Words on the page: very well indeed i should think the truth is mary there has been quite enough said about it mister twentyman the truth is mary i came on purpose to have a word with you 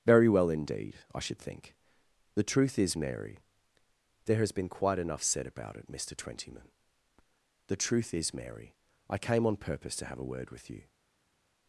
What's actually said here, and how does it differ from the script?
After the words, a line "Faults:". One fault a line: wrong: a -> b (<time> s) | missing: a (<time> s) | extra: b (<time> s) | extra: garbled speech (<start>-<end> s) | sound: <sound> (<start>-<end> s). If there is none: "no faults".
very well indeed i should think the truth is mary there has been quite enough said about it mister twentyman the truth is mary i came on purpose to have a word with you
Faults:
no faults